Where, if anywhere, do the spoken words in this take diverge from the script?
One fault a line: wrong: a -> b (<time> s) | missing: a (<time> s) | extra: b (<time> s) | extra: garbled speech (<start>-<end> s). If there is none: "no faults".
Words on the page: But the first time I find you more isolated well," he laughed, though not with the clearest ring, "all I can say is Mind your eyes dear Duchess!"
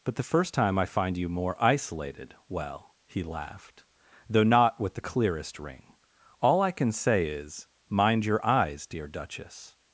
no faults